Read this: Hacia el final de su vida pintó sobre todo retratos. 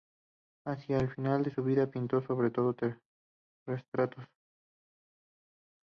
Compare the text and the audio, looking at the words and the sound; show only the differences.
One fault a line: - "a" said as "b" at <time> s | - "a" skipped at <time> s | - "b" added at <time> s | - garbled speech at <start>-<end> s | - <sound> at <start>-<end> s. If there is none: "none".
none